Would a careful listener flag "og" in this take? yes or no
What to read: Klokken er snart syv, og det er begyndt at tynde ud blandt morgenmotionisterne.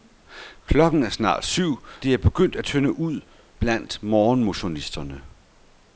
yes